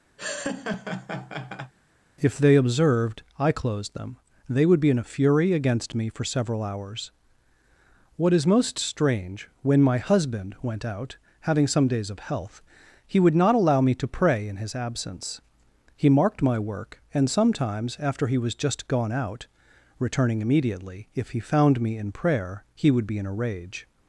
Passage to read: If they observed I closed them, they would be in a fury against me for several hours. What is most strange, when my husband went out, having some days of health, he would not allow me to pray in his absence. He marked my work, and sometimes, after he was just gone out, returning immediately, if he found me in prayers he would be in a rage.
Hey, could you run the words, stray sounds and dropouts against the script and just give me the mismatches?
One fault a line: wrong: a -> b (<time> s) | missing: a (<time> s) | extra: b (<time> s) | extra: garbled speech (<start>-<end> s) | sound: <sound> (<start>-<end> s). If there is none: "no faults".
sound: laugh (0.2-1.7 s)
wrong: prayers -> prayer (22.1 s)